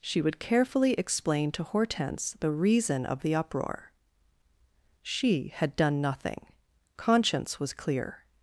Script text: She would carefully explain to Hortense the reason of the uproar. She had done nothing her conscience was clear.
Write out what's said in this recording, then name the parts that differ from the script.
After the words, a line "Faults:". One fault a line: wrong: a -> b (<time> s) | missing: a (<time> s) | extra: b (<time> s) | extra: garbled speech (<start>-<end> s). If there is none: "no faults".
She would carefully explain to Hortense the reason of the uproar. She had done nothing conscience was clear.
Faults:
missing: her (6.5 s)